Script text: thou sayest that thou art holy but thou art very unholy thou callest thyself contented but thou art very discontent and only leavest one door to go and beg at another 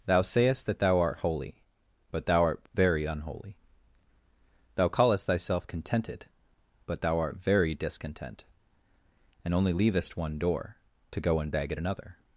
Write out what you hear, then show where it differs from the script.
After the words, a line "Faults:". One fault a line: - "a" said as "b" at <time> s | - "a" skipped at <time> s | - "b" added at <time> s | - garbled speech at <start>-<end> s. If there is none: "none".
thou sayest that thou art holy but thou art very unholy thou callest thyself contented but thou art very discontent and only leavest one door to go and beg at another
Faults:
none